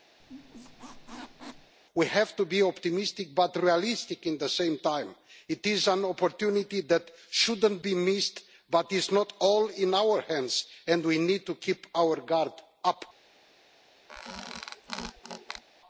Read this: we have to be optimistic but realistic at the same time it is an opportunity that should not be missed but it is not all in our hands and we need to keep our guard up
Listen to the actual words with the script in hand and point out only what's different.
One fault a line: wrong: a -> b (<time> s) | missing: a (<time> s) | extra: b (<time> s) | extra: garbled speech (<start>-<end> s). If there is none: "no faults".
no faults